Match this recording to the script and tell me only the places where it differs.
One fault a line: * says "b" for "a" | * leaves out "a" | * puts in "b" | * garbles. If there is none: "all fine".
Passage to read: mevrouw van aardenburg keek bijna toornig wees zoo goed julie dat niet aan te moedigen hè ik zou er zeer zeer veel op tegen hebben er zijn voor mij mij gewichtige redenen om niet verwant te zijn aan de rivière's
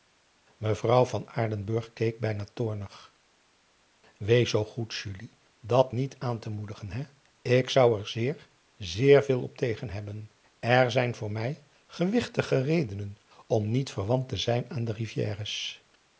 * leaves out "mij"